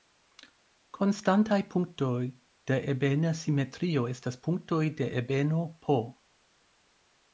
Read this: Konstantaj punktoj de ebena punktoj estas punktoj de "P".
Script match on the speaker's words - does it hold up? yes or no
no